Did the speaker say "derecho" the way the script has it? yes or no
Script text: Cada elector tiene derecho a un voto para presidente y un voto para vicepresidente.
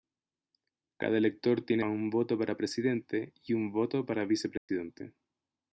no